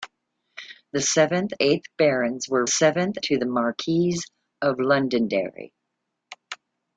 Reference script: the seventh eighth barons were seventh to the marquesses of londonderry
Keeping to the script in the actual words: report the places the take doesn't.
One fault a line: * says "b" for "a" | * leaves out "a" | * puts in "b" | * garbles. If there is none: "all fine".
all fine